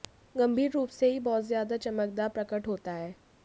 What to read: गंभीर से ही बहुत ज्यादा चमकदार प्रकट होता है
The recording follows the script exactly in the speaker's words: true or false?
false